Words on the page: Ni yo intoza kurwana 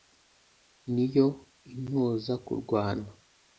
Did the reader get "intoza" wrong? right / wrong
right